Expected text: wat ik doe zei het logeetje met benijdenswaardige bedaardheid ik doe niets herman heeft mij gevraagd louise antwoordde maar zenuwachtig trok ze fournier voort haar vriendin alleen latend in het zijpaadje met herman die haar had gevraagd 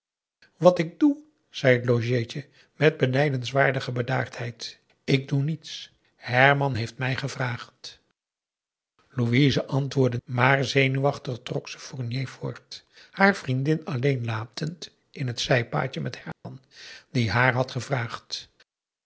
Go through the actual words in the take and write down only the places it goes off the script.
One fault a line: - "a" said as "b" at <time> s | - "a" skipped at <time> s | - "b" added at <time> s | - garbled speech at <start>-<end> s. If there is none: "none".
none